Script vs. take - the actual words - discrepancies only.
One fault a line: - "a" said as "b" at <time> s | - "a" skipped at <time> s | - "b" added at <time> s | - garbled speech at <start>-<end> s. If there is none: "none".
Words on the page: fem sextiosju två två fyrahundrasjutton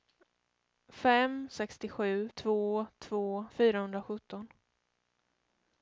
none